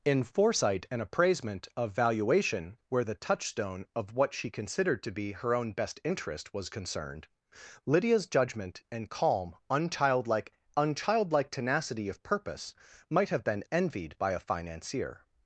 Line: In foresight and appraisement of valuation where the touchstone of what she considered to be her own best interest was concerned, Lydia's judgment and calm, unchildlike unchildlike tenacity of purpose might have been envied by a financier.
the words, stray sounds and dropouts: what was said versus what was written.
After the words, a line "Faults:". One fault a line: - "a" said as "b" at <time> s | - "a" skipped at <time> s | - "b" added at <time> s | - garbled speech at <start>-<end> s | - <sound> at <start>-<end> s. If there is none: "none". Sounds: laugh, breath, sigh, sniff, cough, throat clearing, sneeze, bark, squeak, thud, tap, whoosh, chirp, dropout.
In foresight and appraisement of valuation where the touchstone of what she considered to be her own best interest was concerned, Lydia's judgment and calm, unchildlike unchildlike tenacity of purpose might have been envied by a financier.
Faults:
none